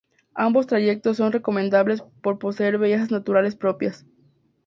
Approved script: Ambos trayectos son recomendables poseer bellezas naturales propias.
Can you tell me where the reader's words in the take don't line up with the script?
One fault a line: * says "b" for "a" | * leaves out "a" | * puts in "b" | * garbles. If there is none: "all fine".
* puts in "por"